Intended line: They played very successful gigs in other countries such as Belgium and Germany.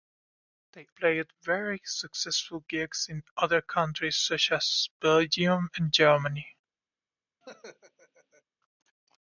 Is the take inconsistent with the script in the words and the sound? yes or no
yes